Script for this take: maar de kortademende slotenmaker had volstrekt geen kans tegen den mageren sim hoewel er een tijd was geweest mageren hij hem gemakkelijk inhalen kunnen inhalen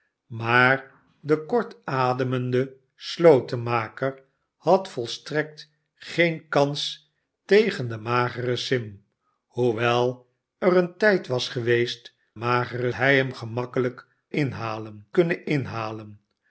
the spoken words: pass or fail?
pass